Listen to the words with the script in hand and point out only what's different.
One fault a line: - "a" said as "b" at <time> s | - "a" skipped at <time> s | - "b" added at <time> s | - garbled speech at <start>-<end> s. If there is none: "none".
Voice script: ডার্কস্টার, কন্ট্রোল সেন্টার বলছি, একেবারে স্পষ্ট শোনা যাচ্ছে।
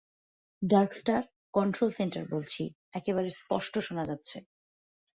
none